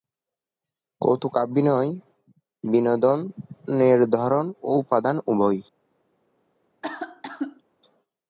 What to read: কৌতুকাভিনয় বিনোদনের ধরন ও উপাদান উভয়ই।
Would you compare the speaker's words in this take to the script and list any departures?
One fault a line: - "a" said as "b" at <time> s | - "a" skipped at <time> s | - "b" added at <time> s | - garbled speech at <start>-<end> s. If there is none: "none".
none